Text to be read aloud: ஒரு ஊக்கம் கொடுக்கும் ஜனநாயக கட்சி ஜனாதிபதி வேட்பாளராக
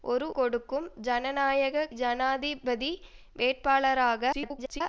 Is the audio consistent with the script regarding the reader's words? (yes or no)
no